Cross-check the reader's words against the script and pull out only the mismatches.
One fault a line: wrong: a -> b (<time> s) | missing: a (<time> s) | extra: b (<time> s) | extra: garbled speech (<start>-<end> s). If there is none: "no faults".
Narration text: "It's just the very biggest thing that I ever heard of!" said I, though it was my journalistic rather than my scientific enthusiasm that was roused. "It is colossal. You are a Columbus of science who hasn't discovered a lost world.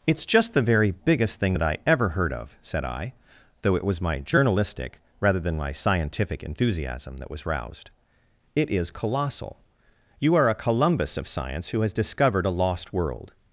wrong: hasn't -> has (11.8 s)